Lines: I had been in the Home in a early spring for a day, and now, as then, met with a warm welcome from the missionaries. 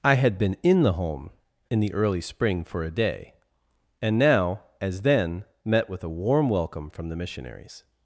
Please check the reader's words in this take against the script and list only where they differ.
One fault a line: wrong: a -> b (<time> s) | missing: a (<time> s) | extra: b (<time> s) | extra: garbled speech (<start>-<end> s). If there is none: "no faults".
wrong: a -> the (1.8 s)